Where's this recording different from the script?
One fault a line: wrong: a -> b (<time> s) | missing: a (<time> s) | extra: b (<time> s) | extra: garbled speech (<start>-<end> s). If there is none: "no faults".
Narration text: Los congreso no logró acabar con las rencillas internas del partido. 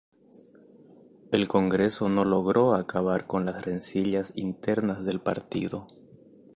wrong: Los -> El (1.3 s)